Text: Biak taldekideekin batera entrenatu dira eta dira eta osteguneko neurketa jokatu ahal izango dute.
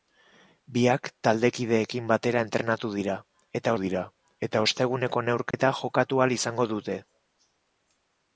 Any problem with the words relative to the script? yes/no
no